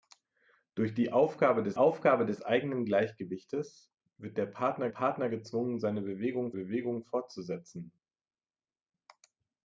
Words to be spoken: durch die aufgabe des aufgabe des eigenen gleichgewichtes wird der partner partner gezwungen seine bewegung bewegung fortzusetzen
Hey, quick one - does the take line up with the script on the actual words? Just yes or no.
yes